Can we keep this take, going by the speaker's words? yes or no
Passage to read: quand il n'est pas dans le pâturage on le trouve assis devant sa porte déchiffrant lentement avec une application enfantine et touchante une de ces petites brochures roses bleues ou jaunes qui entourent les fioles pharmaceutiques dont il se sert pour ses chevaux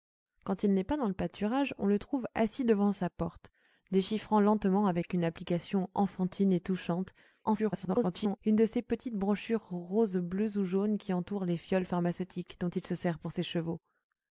no